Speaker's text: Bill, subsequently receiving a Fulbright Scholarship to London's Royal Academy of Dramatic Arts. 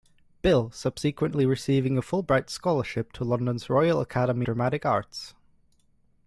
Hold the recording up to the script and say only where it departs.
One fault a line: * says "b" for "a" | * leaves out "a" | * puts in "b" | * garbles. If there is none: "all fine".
* leaves out "of"